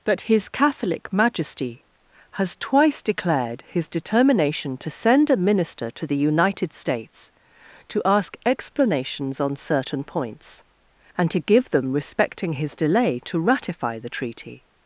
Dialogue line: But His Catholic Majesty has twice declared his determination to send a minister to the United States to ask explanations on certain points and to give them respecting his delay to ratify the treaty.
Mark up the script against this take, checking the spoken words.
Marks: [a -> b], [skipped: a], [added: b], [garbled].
[But -> That] His Catholic Majesty has twice declared his determination to send a minister to the United States to ask explanations on certain points and to give them respecting his delay to ratify the treaty.